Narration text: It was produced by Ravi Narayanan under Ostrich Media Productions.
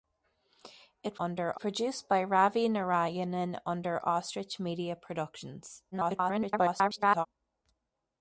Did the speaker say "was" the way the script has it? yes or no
no